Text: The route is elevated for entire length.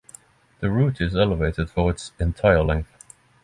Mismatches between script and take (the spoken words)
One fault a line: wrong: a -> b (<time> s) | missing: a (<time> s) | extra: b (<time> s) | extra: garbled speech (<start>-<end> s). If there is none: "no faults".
extra: its (1.9 s)